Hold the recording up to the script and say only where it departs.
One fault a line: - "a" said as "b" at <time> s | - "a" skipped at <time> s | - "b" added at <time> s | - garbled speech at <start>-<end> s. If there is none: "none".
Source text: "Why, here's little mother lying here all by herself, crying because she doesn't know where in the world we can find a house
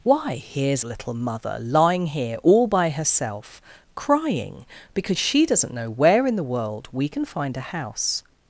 none